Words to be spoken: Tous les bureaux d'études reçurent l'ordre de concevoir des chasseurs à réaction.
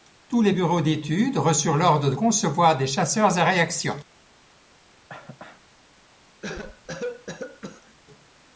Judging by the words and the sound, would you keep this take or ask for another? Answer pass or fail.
fail